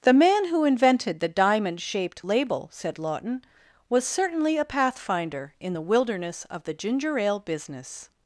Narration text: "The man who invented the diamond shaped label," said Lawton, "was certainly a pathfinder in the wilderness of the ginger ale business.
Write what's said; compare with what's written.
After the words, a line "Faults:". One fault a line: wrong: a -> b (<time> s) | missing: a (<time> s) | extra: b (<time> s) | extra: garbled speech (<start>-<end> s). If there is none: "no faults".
"The man who invented the diamond shaped label," said Lawton, "was certainly a pathfinder in the wilderness of the ginger ale business.
Faults:
no faults